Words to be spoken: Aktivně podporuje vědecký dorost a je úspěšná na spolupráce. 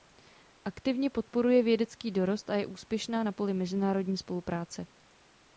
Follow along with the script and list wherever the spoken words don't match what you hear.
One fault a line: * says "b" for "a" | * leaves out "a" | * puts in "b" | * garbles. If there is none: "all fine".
* puts in "poli mezinárodní"